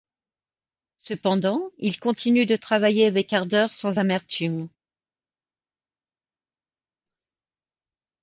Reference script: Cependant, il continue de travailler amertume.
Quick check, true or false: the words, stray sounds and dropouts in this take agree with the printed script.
false